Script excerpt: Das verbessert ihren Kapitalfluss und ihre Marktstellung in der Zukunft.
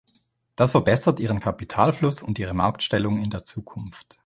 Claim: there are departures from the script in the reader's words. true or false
false